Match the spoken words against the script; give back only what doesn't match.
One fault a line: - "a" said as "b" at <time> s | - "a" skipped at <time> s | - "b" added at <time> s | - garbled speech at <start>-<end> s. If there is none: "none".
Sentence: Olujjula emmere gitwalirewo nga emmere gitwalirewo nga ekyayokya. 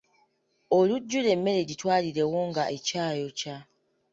- "emmere gitwalirewo nga" skipped at 2.6 s